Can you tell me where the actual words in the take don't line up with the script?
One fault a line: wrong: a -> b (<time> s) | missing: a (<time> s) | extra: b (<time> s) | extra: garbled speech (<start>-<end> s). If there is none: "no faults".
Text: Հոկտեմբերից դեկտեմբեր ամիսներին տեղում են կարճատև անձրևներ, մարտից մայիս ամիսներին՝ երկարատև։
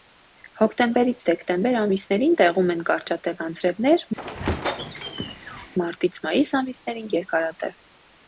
no faults